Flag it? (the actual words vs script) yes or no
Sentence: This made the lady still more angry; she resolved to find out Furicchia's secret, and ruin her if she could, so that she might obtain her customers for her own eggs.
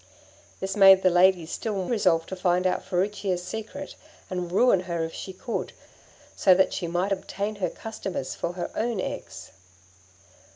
yes